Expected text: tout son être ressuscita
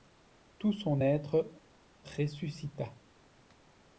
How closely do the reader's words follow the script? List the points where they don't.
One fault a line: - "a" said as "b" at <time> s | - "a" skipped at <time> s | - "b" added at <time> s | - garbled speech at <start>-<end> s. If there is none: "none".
none